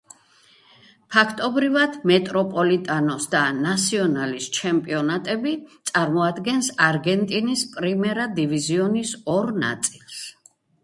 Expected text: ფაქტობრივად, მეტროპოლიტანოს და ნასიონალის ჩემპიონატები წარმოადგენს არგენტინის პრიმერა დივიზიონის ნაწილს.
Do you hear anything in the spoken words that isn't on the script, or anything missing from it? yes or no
yes